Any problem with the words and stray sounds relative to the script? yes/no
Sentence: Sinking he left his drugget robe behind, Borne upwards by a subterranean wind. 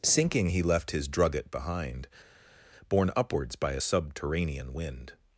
yes